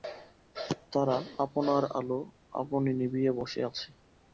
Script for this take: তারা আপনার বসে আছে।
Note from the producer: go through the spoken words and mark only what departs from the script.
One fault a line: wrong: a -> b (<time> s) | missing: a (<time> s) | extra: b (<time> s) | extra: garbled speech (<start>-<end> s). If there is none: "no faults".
extra: আলো আপনি নিবিয়ে (2.0 s)